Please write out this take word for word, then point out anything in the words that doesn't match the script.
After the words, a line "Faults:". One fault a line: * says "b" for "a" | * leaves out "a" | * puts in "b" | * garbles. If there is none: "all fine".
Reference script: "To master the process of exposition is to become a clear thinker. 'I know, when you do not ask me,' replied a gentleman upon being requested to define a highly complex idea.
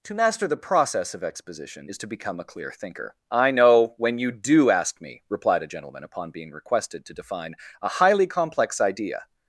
"To master the process of exposition is to become a clear thinker. 'I know, when you do ask me,' replied a gentleman upon being requested to define a highly complex idea.
Faults:
* leaves out "not"